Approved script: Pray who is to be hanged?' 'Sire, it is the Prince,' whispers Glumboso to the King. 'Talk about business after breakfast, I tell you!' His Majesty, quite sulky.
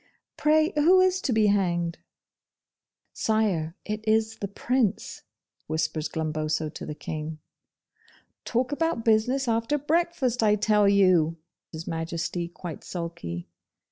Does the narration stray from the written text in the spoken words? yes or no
no